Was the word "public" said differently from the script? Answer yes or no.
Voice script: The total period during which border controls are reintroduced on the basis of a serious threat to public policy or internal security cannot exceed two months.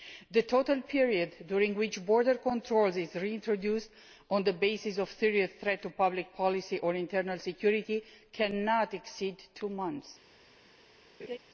no